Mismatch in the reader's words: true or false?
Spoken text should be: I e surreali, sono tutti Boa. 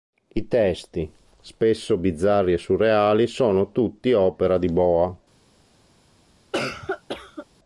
true